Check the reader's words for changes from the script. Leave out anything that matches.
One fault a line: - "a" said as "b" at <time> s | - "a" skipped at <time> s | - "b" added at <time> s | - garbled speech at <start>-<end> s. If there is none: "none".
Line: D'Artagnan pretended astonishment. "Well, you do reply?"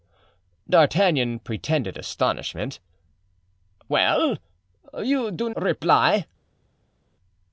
none